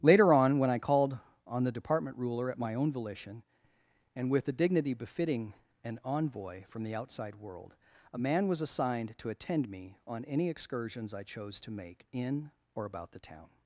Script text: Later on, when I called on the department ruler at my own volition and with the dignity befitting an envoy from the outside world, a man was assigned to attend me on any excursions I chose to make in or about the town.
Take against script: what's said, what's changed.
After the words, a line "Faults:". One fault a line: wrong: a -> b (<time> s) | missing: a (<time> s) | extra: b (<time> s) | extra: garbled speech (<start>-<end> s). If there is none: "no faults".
Later on, when I called on the department ruler at my own volition and with the dignity befitting an envoy from the outside world, a man was assigned to attend me on any excursions I chose to make in or about the town.
Faults:
no faults